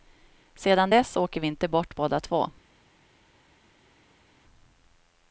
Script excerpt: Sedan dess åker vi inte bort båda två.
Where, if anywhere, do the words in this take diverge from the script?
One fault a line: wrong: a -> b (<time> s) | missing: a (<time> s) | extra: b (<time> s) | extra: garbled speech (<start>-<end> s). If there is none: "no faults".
no faults